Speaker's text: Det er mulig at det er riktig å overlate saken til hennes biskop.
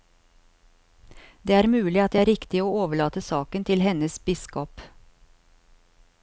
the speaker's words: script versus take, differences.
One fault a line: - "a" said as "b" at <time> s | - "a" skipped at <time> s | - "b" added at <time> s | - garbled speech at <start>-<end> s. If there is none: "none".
none